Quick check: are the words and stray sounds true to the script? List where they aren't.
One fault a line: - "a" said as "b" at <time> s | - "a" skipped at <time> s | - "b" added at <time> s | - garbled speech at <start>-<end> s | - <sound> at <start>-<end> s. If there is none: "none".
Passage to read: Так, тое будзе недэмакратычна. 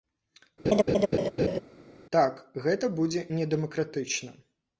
- laugh at 0.6-1.6 s
- "тое" said as "гэта" at 2.7 s